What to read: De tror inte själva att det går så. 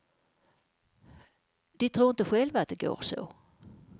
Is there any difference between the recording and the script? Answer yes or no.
no